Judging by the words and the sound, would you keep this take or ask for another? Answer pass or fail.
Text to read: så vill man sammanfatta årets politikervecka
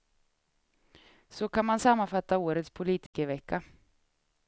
fail